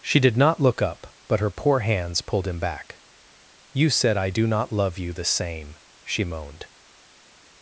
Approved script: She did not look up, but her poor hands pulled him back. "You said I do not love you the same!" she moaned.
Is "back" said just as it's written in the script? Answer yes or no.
yes